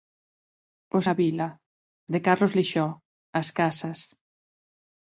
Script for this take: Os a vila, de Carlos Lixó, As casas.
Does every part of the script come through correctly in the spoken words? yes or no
yes